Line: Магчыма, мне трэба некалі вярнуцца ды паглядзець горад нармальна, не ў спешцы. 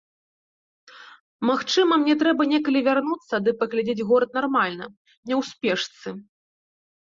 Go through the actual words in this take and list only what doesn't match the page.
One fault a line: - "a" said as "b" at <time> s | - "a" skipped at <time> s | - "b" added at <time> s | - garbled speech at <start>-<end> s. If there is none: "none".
none